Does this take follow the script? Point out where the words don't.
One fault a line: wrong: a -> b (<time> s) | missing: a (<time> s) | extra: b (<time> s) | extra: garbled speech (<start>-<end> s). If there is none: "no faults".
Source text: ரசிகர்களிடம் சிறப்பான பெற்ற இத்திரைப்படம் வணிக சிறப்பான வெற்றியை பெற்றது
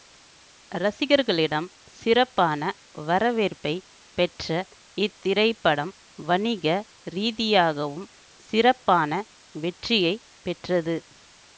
extra: வரவேற்பை (3.0 s)
extra: ரீதியாகவும் (7.1 s)